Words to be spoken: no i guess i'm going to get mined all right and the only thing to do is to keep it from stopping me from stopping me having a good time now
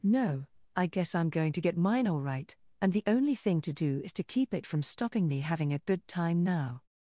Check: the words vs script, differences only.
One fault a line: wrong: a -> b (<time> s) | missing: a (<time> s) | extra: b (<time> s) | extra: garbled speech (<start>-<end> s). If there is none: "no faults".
wrong: mined -> mine (1.8 s)
missing: from stopping me (5.4 s)